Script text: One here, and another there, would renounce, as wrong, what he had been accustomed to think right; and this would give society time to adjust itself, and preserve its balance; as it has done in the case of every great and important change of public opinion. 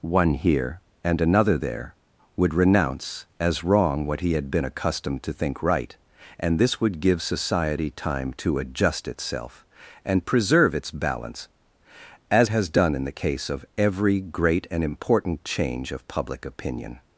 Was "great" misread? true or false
false